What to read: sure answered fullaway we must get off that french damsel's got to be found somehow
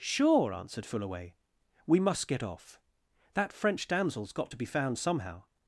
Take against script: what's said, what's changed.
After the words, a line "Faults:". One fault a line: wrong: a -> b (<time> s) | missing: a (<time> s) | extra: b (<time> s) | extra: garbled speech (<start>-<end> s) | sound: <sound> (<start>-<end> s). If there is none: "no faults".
sure answered fullaway we must get off that french damsel's got to be found somehow
Faults:
no faults